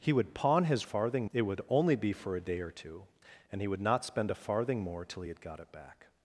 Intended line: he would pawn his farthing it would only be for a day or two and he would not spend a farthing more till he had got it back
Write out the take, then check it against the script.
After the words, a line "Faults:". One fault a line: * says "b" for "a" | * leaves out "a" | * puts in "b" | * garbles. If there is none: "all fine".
he would pawn his farthing it would only be for a day or two and he would not spend a farthing more till he had got it back
Faults:
all fine